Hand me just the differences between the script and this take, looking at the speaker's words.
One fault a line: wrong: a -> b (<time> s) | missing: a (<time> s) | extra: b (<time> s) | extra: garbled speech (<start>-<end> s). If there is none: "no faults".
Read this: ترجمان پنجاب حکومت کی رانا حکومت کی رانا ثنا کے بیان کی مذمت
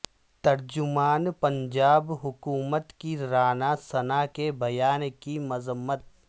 missing: حکومت کی رانا (3.7 s)